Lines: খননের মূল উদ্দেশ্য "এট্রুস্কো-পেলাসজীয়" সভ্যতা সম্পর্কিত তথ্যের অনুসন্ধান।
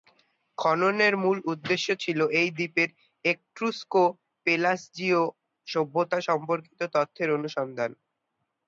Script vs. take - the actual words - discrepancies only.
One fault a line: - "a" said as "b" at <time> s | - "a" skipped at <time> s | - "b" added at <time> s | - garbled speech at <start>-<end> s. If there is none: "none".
- "ছিল এই দ্বীপের" added at 2.0 s